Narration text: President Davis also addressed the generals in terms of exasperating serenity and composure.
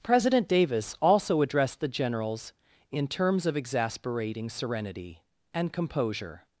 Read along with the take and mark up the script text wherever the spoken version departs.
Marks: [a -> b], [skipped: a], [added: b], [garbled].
President Davis also addressed the generals in terms of exasperating serenity and composure.